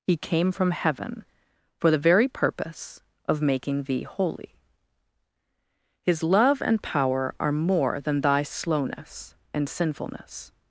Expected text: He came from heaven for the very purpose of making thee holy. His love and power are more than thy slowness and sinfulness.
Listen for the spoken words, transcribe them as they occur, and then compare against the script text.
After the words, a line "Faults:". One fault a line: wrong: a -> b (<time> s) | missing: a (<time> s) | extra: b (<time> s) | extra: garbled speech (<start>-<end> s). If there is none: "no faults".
He came from heaven for the very purpose of making thee holy. His love and power are more than thy slowness and sinfulness.
Faults:
no faults